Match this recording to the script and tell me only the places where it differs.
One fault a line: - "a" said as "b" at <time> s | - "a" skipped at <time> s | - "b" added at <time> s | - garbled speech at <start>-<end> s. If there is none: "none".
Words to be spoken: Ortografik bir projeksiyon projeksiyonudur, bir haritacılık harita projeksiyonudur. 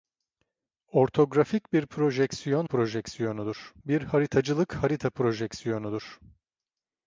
none